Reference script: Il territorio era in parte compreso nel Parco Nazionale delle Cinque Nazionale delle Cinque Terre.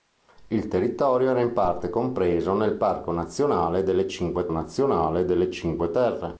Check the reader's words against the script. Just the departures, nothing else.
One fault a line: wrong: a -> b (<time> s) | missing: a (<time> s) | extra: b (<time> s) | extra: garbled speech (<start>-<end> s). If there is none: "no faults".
no faults